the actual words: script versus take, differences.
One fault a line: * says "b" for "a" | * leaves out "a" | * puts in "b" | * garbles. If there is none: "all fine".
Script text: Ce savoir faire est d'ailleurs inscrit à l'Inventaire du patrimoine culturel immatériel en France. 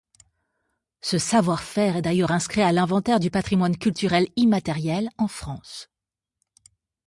all fine